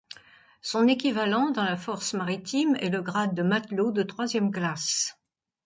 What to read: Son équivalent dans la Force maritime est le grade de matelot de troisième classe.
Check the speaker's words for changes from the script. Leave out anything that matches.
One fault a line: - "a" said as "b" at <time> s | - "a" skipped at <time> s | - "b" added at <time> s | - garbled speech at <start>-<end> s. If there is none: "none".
none